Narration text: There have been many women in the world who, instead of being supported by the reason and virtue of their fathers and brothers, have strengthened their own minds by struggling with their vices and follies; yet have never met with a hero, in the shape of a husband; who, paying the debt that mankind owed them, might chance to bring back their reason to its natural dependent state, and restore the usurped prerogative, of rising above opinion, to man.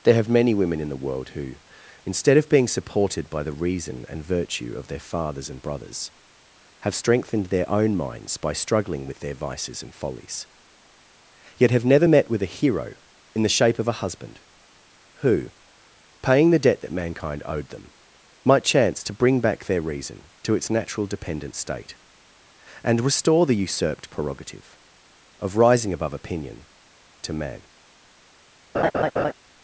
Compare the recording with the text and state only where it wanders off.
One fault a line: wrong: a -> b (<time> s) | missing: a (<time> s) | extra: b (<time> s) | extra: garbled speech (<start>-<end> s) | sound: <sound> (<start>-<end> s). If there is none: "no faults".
missing: been (0.3 s)
sound: laugh (28.7-29.3 s)